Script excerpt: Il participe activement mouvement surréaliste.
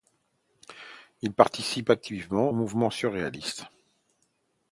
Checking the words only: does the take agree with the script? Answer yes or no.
yes